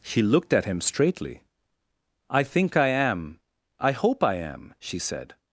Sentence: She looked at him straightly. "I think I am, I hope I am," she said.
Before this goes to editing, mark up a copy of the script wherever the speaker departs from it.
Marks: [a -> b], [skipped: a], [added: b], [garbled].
She looked at him straightly. "I think I am, I hope I am," she said.